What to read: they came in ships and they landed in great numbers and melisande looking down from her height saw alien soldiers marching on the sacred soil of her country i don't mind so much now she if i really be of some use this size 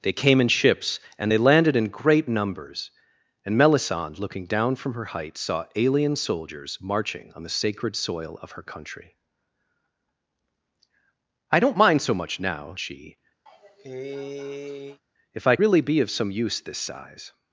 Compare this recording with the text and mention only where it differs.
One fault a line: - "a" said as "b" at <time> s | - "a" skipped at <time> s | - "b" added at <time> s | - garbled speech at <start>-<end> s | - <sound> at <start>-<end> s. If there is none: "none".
- cough at 13.5-15.0 s